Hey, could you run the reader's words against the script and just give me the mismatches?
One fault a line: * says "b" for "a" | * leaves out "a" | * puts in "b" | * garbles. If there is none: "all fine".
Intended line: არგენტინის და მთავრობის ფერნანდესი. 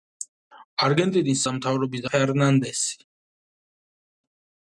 all fine